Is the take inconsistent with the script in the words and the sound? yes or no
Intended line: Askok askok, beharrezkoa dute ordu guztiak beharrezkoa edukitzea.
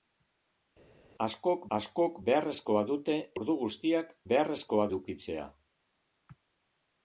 no